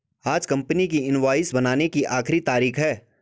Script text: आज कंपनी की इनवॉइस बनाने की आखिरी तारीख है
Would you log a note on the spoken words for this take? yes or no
no